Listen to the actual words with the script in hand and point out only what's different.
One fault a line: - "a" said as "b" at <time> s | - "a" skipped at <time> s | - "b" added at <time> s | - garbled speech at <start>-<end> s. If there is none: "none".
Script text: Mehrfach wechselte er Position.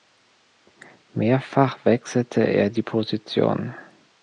- "die" added at 2.7 s